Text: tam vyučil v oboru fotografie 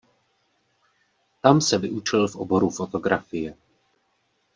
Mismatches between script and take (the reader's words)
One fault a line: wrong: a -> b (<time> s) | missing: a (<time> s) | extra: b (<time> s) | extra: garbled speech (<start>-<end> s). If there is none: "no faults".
extra: se (1.6 s)